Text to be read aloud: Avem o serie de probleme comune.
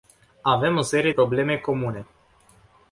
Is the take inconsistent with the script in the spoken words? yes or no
yes